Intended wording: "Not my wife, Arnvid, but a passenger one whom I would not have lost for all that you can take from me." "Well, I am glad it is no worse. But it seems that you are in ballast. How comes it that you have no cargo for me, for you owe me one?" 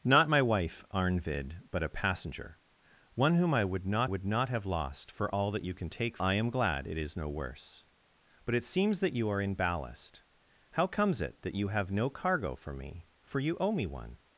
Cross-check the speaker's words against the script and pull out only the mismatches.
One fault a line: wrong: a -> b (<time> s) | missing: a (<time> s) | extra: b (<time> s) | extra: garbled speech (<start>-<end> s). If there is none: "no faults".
extra: would not (4.0 s)
missing: from me Well (6.2 s)